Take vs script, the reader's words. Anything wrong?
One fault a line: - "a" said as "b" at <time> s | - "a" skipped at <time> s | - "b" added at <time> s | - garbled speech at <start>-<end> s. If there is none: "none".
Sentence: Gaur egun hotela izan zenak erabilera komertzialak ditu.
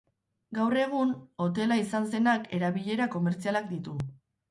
none